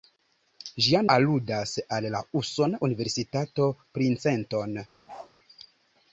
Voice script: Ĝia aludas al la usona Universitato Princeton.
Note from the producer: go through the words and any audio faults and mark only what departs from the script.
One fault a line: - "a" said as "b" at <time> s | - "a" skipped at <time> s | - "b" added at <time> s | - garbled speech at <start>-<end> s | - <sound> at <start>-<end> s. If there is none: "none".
- bark at 5.1-5.3 s